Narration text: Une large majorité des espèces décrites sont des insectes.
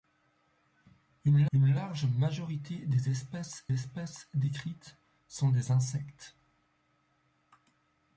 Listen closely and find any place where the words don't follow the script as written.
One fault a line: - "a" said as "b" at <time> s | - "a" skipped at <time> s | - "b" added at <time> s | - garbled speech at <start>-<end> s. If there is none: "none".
- "une" added at 1.5 s
- "espèces" added at 3.7 s